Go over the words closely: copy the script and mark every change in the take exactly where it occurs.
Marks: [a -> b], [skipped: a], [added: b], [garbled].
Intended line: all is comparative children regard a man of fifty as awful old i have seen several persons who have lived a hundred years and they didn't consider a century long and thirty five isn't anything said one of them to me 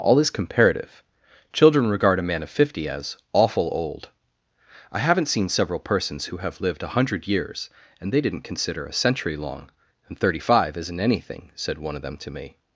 all is comparative children regard a man of fifty as awful old i [have -> haven't] seen several persons who have lived a hundred years and they didn't consider a century long and thirty five isn't anything said one of them to me